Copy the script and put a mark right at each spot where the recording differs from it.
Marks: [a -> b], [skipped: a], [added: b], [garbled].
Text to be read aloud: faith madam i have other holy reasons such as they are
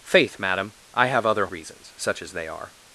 faith madam i have other [skipped: holy] reasons such as they are